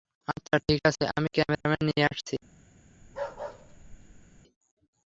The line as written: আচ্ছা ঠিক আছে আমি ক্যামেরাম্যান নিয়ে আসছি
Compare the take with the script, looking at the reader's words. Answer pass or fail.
pass